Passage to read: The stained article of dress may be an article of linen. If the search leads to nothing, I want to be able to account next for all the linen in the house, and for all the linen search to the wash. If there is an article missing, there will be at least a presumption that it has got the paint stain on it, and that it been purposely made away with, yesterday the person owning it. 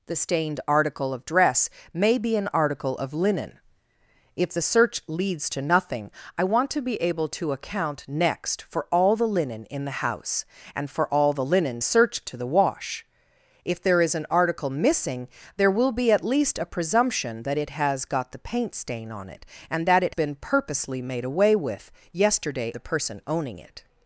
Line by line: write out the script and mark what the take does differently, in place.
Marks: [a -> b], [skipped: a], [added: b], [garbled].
The stained article of dress may be an article of linen. If the search leads to nothing, I want to be able to account next for all the linen in the house, and for all the linen search to the wash. If there is an article missing, there will be at least a presumption that it has got the paint stain on it, and that it been purposely made away with, yesterday the person owning it.